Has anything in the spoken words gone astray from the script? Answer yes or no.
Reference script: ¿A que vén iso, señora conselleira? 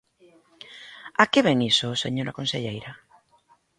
no